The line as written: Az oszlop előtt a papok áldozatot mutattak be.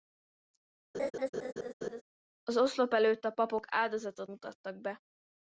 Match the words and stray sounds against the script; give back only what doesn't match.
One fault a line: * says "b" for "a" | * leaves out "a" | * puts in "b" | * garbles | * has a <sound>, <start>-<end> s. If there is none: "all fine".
* has a laugh, 0.9-2.0 s